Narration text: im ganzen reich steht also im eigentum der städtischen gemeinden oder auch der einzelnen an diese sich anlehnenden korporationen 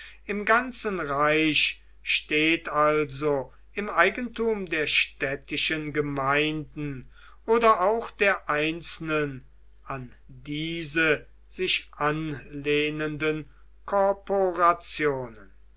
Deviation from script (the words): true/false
false